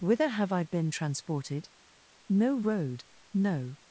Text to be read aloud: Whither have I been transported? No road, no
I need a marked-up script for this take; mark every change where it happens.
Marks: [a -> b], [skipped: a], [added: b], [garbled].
Whither have I been transported? No road, no